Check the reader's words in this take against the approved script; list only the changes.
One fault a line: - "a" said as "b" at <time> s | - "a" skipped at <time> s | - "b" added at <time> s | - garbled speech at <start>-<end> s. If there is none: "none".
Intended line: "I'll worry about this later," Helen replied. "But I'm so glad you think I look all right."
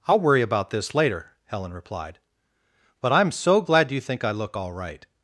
none